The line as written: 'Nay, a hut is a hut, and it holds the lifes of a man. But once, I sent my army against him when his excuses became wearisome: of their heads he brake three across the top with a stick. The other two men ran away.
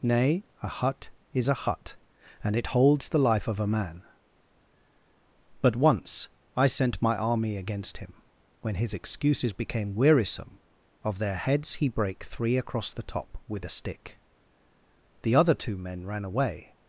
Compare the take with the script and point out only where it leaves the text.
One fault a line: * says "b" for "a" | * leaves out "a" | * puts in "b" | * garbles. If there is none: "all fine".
* says "life" for "lifes"